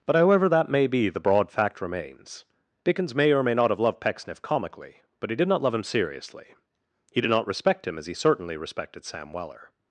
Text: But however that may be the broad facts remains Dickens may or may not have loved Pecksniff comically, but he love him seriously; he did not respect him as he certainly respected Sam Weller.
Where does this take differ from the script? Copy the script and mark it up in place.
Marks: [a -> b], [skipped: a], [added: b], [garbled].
But however that may be the broad [facts -> fact] remains Dickens may or may not have loved Pecksniff comically, but he [added: did not] love him seriously; he did not respect him as he certainly respected Sam Weller.